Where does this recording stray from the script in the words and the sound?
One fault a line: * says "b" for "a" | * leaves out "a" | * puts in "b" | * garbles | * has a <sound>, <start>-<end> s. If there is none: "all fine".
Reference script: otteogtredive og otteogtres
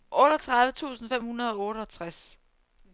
* puts in "tusind fem hundrede"